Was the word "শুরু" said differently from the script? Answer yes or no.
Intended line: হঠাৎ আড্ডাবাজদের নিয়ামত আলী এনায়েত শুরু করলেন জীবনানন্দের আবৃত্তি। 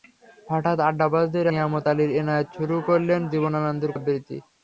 no